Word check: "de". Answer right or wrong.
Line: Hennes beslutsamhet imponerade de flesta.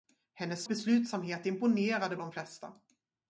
right